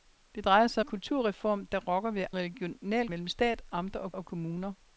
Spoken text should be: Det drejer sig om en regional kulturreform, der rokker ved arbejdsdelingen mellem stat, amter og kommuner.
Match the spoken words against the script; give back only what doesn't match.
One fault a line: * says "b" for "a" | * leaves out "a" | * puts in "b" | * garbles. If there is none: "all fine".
* leaves out "om en regional"
* says "regional" for "arbejdsdelingen"
* puts in "og"